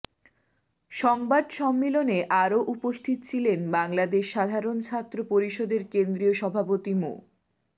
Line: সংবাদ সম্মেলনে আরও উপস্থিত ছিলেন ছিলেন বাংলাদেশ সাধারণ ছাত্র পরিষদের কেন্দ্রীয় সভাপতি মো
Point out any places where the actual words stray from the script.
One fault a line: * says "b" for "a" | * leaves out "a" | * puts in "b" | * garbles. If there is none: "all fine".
* leaves out "ছিলেন"